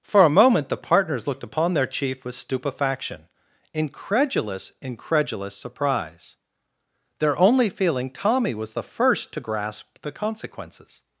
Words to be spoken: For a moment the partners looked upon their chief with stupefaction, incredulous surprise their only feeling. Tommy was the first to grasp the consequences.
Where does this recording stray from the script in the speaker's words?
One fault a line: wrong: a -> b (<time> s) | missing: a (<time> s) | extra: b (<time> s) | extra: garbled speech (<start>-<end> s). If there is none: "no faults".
extra: incredulous (4.8 s)